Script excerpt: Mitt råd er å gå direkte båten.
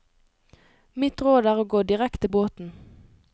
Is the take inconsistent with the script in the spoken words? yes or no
no